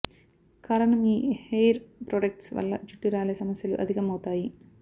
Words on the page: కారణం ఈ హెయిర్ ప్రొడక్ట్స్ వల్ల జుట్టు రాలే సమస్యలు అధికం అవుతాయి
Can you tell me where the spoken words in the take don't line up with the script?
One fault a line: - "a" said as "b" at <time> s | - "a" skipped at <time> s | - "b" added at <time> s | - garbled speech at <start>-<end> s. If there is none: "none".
none